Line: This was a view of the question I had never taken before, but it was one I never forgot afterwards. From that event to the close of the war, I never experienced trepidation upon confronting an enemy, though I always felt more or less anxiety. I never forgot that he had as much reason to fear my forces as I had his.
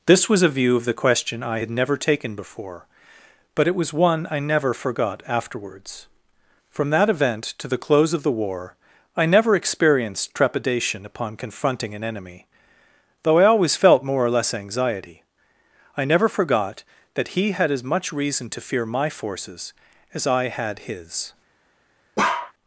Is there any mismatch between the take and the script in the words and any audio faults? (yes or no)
yes